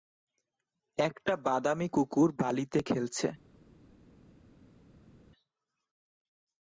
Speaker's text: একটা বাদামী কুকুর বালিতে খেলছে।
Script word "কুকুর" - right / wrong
right